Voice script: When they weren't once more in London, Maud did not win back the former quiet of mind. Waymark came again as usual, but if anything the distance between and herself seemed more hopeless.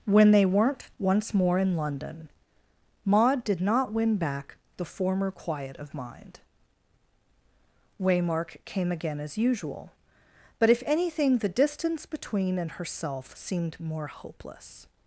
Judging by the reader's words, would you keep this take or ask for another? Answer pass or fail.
pass